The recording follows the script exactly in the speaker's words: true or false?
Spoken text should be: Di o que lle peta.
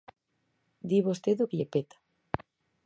false